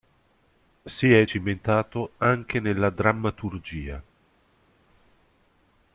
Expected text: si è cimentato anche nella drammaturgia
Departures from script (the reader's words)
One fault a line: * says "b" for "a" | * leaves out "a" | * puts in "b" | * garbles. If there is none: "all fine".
all fine